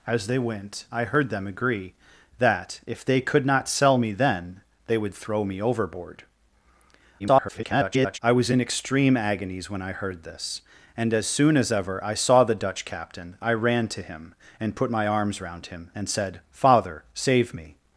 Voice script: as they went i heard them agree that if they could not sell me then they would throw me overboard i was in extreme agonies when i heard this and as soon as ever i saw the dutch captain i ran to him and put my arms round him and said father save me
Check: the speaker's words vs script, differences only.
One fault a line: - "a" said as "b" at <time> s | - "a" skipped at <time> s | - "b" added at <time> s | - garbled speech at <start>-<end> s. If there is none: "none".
- garbled speech at 7.2-8.2 s